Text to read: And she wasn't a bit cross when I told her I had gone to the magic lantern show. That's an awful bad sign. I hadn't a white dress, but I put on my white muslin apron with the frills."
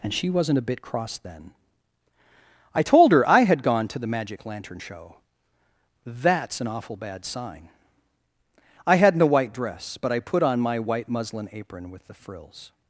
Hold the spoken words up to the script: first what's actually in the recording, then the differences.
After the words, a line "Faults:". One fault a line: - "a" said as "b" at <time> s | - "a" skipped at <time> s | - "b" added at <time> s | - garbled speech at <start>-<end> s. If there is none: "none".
And she wasn't a bit cross then I told her I had gone to the magic lantern show. That's an awful bad sign. I hadn't a white dress, but I put on my white muslin apron with the frills."
Faults:
- "when" said as "then" at 1.2 s